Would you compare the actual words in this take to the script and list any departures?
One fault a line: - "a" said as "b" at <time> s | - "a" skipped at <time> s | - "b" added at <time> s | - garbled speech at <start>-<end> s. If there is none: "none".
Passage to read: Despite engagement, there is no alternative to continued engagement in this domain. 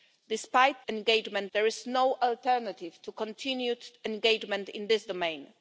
none